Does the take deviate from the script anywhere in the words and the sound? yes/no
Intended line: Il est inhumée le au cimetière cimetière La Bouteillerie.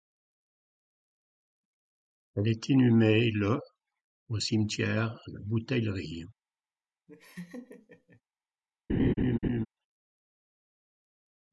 yes